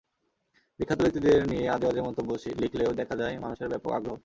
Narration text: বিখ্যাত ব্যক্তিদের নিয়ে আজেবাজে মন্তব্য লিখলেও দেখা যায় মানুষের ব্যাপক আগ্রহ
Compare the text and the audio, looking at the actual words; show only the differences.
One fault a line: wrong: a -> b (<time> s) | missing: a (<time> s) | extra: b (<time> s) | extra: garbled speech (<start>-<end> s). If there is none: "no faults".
no faults